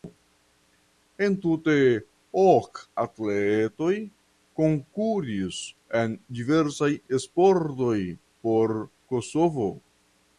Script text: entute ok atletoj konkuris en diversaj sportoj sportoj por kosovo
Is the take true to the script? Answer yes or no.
no